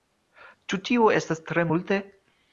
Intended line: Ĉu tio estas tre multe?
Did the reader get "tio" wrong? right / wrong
right